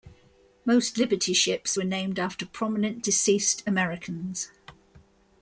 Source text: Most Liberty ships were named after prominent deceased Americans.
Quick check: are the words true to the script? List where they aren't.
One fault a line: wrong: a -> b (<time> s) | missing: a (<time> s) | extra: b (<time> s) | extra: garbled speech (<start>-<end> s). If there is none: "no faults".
no faults